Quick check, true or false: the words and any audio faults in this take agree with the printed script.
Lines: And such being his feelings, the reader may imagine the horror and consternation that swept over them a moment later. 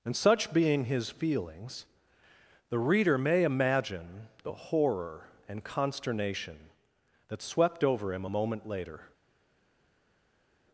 false